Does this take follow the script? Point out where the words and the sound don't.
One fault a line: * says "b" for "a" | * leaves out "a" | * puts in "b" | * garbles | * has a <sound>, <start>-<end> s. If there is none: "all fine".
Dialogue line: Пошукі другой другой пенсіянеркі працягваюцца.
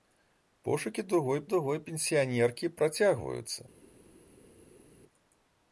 all fine